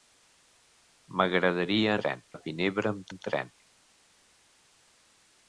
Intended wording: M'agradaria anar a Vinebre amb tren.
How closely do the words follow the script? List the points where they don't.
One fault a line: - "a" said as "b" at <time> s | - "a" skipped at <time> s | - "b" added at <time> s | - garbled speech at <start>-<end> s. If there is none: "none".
- "anar" said as "tren" at 2.0 s
- "amb" added at 3.1 s